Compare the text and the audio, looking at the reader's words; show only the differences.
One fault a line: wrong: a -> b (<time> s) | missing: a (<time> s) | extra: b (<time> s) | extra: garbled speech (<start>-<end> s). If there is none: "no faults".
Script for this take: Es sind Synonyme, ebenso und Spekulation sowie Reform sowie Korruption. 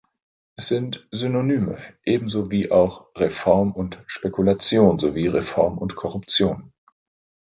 extra: wie auch Reform (2.5 s)
wrong: sowie -> und (5.8 s)